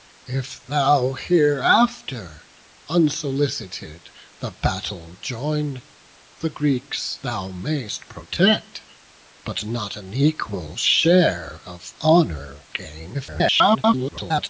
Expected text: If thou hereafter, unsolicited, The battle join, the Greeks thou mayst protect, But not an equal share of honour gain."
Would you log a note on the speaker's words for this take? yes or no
yes